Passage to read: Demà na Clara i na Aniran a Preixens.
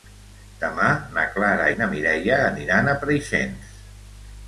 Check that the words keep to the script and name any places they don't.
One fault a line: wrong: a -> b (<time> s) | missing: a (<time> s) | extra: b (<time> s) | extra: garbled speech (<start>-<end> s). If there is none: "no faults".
extra: Mireia (2.0 s)